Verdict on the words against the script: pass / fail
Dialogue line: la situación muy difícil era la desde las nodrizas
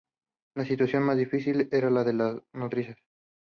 fail